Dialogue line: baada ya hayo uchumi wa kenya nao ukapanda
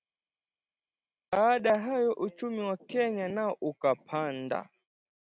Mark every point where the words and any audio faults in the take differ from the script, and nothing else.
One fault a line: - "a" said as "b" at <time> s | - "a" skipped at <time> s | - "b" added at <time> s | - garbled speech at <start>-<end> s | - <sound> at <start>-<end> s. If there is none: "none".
none